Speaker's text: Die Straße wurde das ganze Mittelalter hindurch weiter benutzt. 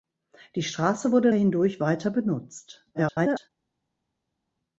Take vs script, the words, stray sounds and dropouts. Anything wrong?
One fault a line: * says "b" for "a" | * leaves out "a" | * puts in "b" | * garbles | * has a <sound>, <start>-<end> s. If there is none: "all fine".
* leaves out "das ganze Mittelalter"
* garbles